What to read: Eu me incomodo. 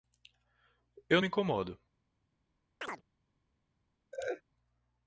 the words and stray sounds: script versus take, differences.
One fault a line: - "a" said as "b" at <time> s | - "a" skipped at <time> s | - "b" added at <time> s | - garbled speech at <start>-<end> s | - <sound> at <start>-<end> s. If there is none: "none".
- chirp at 2.8-3.0 s
- laugh at 4.1-4.4 s